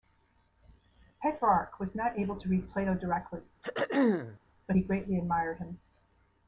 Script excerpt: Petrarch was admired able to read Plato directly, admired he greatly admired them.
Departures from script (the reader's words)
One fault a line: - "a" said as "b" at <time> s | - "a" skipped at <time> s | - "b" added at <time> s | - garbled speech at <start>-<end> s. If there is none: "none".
- "admired" said as "not" at 1.9 s
- "admired" said as "but" at 4.7 s
- "them" said as "him" at 5.6 s